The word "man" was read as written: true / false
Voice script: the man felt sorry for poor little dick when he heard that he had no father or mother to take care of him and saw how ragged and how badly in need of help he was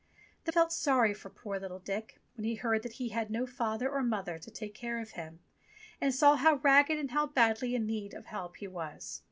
false